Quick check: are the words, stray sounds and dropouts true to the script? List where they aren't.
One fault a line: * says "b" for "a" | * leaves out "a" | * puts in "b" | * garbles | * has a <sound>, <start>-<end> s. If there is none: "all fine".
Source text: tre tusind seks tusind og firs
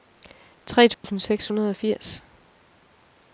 * has a dropout, 0.9-1.0 s
* says "hundrede" for "tusind"